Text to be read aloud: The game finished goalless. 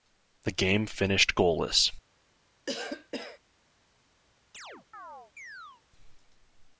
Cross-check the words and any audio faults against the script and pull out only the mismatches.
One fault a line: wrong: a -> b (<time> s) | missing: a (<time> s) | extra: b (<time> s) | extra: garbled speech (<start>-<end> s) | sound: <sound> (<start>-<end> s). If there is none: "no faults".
sound: cough (2.7-3.4 s)
sound: chirp (4.5-5.8 s)